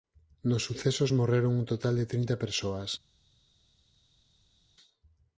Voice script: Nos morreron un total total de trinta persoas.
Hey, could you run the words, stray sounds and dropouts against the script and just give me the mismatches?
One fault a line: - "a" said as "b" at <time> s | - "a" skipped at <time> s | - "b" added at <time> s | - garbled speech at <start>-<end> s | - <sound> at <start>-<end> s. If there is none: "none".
- "sucesos" added at 0.6 s
- "total" skipped at 2.0 s